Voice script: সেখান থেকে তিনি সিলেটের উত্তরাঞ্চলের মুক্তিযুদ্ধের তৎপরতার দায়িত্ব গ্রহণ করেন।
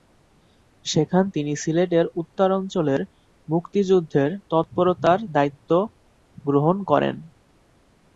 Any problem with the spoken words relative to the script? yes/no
yes